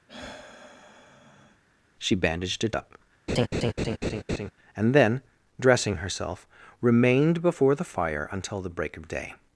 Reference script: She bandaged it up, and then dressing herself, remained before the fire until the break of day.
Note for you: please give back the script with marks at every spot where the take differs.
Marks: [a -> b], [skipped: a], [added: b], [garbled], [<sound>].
[sigh] She bandaged it up, [laugh] and then dressing herself, remained before the fire until the break of day.